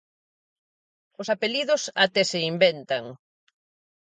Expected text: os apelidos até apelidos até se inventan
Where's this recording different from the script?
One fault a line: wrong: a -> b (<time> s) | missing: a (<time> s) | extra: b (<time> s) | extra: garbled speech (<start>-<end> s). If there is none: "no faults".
missing: apelidos até (2.2 s)